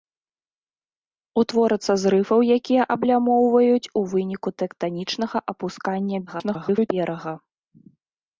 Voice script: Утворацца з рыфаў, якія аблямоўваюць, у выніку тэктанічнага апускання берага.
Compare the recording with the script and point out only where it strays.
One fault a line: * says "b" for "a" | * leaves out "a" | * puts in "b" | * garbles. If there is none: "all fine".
* garbles